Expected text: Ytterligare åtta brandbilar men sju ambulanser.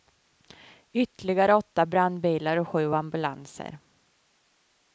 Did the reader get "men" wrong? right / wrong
wrong